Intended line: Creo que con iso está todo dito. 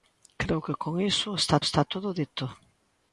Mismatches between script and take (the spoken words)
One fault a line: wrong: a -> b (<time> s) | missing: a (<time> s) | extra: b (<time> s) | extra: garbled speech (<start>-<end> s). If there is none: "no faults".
extra: está (1.7 s)